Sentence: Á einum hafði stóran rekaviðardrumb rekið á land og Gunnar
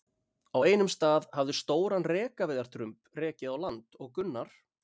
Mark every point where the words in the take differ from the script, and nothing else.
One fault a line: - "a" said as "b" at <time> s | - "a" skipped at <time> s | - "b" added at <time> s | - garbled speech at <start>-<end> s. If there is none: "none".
- "stað" added at 0.9 s